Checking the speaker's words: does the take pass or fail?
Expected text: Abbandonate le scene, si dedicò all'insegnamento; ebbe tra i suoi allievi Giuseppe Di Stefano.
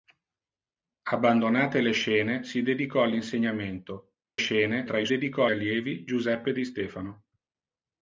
fail